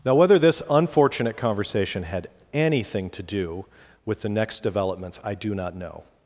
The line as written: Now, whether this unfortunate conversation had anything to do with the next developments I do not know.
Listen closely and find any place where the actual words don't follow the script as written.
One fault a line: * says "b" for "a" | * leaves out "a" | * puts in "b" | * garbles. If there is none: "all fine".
all fine